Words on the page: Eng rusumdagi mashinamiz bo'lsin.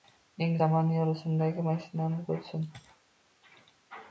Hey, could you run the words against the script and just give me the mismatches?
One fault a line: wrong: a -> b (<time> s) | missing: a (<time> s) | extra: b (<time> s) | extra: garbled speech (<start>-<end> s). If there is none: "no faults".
extra: zamonaviy (0.6 s)